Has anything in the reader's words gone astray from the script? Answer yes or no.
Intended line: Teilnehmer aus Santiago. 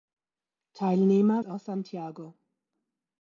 no